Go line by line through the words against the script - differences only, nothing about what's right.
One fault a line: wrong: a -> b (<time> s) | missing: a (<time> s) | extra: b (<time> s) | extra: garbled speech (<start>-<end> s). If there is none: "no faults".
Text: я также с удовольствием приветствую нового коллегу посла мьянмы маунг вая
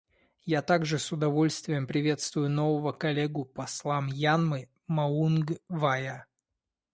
no faults